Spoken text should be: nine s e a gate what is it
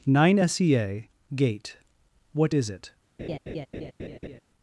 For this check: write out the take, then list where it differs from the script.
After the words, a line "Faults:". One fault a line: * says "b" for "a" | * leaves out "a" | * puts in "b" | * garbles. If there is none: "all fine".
nine s e a gate what is it
Faults:
all fine